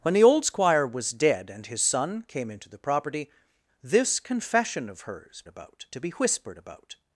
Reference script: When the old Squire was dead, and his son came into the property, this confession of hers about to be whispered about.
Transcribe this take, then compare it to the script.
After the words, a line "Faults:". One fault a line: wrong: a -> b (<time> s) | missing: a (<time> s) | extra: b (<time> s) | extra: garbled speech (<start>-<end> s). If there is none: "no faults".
When the old Squire was dead, and his son came into the property, this confession of hers about to be whispered about.
Faults:
no faults